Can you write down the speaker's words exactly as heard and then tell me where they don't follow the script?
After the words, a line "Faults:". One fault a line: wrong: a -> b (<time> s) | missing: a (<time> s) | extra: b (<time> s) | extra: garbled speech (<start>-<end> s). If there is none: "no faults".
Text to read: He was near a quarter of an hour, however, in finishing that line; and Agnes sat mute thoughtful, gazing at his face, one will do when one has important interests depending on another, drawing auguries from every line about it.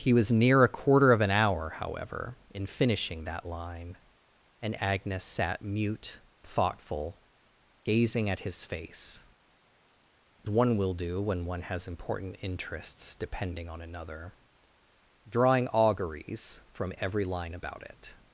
He was near a quarter of an hour, however, in finishing that line; and Agnes sat mute thoughtful, gazing at his face, one will do when one has important interests depending on another, drawing auguries from every line about it.
Faults:
no faults